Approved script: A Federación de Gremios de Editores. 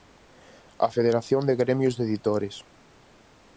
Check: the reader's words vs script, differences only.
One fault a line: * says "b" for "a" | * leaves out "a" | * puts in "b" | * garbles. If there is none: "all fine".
all fine